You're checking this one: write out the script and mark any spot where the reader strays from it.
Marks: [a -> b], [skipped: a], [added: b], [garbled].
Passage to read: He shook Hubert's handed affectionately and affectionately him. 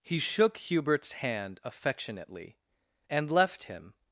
He shook Hubert's [handed -> hand] affectionately and [affectionately -> left] him.